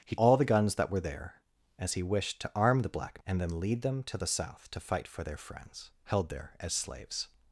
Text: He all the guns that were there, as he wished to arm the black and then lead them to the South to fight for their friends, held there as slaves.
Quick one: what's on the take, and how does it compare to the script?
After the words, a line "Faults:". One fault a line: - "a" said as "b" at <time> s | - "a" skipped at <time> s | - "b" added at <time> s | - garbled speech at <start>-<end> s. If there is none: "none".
He all the guns that were there, as he wished to arm the black and then lead them to the South to fight for their friends, held there as slaves.
Faults:
none